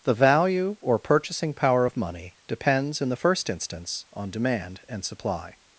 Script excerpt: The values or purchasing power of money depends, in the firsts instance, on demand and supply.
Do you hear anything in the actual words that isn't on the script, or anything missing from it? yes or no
yes